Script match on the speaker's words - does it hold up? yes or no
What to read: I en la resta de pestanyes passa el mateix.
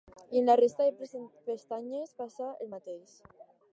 yes